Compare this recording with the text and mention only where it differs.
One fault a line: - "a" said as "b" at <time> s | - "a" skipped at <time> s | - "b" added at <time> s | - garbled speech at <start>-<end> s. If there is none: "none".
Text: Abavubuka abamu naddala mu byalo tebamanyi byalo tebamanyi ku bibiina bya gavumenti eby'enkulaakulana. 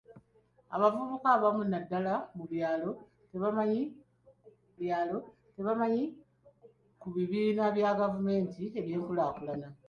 none